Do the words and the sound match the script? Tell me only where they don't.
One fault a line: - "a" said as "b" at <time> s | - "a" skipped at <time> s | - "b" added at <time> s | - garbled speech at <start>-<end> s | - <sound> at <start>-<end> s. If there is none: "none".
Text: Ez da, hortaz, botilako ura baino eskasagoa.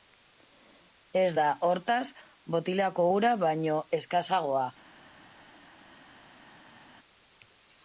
none